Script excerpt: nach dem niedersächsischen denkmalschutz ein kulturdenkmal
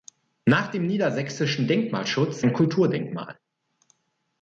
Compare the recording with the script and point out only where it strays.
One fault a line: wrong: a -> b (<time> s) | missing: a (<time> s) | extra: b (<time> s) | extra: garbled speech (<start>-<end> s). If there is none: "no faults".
no faults